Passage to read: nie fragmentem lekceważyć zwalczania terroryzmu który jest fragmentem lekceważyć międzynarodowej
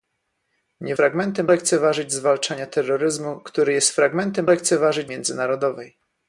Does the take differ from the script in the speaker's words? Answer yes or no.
no